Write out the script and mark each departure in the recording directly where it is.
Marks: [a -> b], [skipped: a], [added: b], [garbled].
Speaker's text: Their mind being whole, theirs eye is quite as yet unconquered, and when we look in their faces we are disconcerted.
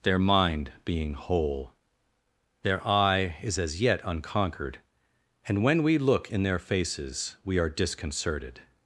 Their mind being whole, [theirs -> their] eye is [skipped: quite] as yet unconquered, and when we look in their faces we are disconcerted.